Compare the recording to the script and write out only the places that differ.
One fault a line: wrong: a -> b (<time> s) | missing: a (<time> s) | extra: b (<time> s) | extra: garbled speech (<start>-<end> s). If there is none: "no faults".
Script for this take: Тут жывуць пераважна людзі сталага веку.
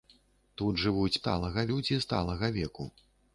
wrong: пераважна -> сталага (1.2 s)